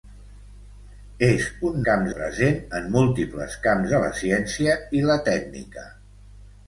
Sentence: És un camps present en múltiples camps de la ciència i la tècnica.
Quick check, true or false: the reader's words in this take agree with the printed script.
true